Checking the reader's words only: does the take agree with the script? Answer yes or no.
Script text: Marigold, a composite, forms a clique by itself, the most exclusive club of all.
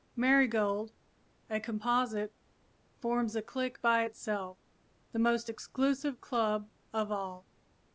yes